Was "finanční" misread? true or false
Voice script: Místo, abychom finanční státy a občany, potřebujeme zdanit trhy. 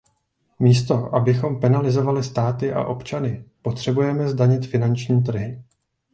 true